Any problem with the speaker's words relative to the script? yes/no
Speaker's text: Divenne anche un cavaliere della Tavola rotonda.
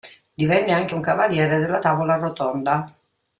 no